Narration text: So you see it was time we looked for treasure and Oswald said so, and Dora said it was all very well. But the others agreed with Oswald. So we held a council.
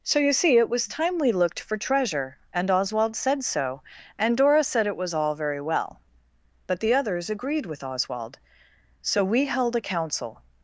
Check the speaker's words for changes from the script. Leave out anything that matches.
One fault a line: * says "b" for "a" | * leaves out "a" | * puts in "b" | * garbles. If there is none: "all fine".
all fine